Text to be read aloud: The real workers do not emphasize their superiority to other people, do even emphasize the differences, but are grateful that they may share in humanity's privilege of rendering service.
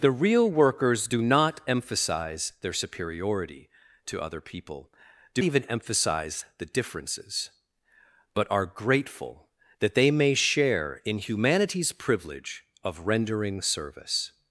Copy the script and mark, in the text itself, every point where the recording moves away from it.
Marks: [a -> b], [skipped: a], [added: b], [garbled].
The real workers do not emphasize their superiority to other people, do even emphasize the differences, but are grateful that they may share in humanity's privilege of rendering service.